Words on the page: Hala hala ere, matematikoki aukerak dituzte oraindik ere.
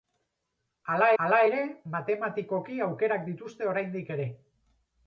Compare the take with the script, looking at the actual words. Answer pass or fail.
pass